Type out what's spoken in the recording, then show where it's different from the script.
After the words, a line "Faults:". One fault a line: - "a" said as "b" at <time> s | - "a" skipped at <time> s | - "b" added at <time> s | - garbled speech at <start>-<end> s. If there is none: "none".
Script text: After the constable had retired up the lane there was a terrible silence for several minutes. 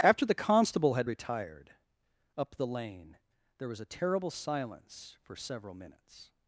After the constable had retired up the lane there was a terrible silence for several minutes.
Faults:
none